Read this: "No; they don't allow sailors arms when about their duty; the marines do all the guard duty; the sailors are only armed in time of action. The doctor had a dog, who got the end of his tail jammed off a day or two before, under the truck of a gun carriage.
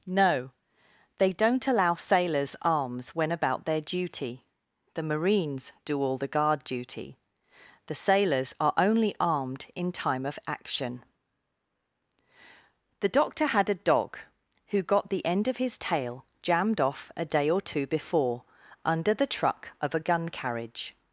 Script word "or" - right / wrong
right